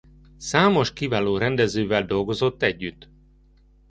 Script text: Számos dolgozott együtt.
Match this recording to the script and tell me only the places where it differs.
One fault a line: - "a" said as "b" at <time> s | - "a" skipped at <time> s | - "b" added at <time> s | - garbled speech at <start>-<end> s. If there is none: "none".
- "kiváló rendezővel" added at 0.9 s